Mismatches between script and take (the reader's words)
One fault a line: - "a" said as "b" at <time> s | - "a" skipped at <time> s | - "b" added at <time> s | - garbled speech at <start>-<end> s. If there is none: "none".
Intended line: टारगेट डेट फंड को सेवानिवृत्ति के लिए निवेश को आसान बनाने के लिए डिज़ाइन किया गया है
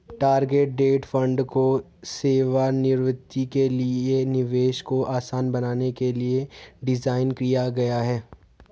none